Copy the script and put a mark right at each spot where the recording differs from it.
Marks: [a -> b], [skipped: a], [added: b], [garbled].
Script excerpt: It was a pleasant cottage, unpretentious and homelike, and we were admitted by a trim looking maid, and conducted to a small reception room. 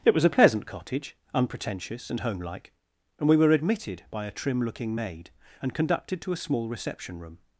It was a pleasant cottage, unpretentious and homelike, and we were admitted by a trim looking maid, and conducted to a small reception room.